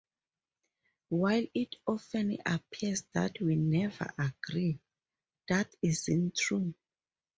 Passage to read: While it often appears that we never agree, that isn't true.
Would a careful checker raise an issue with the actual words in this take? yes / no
no